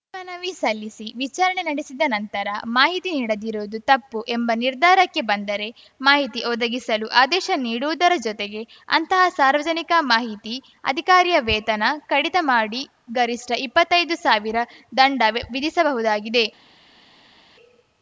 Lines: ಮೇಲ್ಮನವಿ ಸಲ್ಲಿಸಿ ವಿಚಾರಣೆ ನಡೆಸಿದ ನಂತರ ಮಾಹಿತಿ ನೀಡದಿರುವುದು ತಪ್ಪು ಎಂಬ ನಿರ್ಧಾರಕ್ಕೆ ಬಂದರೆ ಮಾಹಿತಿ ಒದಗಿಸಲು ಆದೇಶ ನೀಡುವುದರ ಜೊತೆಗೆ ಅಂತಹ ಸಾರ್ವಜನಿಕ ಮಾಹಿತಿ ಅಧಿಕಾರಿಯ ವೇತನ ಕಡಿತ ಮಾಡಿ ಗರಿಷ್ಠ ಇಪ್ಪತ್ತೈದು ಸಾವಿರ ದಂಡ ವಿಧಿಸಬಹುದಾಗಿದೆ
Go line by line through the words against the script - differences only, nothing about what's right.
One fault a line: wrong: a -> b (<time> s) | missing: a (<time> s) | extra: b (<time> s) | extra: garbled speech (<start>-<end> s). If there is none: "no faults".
no faults